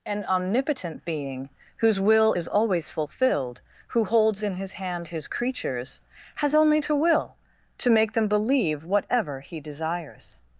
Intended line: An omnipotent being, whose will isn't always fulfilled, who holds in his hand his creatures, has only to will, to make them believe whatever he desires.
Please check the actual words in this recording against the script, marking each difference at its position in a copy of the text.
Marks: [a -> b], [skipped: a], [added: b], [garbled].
An omnipotent being, whose will [isn't -> is] always fulfilled, who holds in his hand his creatures, has only to will, to make them believe whatever he desires.